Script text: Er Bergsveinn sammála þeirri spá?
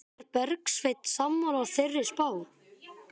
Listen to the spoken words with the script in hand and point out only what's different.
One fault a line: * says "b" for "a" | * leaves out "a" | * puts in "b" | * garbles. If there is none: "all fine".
all fine